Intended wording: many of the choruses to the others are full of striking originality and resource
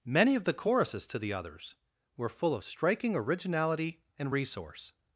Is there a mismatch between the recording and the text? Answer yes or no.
yes